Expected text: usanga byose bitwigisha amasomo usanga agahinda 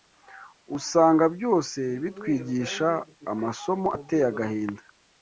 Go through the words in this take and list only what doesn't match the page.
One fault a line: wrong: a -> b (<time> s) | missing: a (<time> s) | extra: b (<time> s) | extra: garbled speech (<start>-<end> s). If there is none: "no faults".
wrong: usanga -> ateye (4.0 s)